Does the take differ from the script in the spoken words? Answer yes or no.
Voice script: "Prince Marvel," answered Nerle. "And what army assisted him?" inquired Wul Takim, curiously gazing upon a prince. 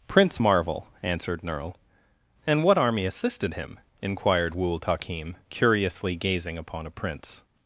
no